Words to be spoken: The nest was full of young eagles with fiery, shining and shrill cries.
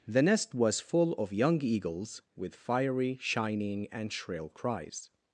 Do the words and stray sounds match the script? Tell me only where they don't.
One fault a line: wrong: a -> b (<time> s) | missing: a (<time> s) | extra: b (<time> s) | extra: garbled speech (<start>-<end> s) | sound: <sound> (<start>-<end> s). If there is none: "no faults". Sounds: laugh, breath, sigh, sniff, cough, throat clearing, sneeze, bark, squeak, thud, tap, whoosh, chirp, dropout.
no faults